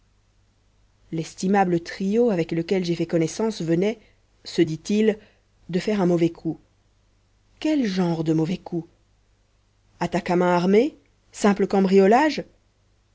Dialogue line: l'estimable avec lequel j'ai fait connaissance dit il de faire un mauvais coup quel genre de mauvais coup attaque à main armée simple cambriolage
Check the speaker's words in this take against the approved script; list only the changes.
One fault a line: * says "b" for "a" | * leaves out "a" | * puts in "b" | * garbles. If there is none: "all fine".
* puts in "trio"
* puts in "venait se"